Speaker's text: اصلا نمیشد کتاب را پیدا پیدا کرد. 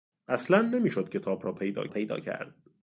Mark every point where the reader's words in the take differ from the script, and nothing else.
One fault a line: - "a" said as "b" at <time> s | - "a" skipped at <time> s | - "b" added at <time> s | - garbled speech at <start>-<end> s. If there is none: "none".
none